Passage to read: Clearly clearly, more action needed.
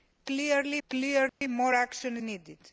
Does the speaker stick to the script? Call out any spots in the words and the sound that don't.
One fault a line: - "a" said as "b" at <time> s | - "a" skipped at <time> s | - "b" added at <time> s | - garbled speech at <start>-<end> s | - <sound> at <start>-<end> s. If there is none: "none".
- dropout at 1.3-1.4 s